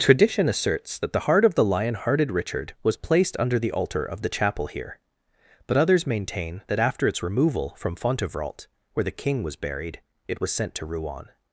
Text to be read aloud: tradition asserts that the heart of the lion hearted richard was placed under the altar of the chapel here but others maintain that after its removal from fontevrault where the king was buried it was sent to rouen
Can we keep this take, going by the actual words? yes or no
yes